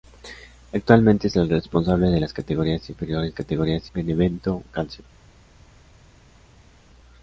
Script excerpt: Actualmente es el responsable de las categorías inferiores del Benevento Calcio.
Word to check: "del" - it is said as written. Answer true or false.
false